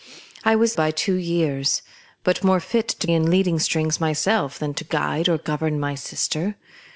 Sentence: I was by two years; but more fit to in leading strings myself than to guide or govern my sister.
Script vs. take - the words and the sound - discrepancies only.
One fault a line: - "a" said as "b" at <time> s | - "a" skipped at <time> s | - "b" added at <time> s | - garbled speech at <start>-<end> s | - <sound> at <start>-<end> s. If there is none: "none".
none